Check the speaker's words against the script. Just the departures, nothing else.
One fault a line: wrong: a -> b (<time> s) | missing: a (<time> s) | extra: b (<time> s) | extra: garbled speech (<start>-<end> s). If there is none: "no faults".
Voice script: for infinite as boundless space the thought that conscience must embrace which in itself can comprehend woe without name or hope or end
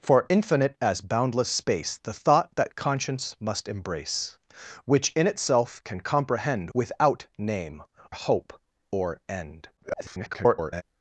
missing: woe (6.7 s)
missing: or (7.8 s)
extra: garbled speech (9.8-10.8 s)